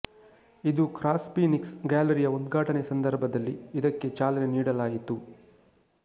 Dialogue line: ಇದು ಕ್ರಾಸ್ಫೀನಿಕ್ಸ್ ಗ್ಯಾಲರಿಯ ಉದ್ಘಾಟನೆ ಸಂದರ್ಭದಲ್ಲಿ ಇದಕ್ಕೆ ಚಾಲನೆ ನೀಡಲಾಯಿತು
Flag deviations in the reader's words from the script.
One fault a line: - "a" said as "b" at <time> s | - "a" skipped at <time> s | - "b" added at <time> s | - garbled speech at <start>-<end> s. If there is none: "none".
none